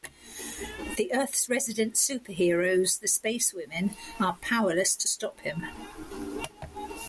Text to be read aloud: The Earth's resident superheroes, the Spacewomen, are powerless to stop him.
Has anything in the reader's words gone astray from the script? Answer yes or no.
no